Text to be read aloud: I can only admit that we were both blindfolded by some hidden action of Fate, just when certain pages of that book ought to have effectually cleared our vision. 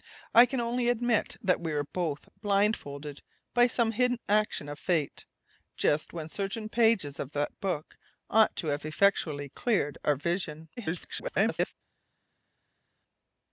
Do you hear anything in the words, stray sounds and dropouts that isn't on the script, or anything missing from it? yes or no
yes